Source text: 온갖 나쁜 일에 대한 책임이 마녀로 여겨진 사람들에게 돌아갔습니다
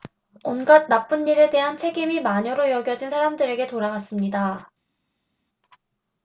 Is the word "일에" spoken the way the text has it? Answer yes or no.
yes